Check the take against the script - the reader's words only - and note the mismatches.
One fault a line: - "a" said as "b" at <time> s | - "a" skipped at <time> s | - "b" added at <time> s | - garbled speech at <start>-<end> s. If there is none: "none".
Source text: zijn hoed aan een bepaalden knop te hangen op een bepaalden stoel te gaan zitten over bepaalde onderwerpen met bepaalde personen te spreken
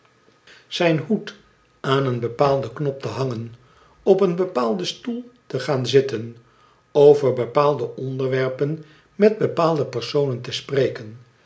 none